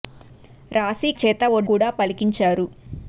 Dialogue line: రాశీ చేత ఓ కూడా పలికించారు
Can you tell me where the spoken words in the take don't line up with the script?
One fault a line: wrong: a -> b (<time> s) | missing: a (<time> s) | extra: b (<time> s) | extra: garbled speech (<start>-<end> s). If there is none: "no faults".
no faults